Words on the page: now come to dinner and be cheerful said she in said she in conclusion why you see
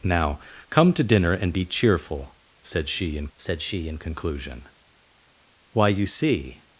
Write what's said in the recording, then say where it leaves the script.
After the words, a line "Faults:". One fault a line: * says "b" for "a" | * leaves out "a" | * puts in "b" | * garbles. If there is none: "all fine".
now come to dinner and be cheerful said she in said she in conclusion why you see
Faults:
all fine